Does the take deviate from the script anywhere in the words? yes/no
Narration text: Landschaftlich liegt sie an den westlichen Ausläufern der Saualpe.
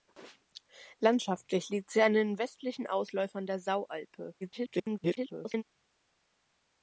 yes